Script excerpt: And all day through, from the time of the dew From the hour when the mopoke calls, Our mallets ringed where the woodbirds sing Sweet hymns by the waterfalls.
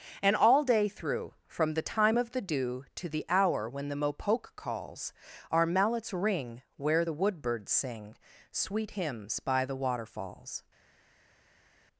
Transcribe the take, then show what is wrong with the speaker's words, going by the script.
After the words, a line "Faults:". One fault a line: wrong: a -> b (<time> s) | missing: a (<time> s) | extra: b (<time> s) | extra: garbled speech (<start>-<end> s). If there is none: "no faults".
And all day through, from the time of the dew To the hour when the mopoke calls, Our mallets ring where the woodbirds sing Sweet hymns by the waterfalls.
Faults:
wrong: From -> To (3.0 s)
wrong: ringed -> ring (6.1 s)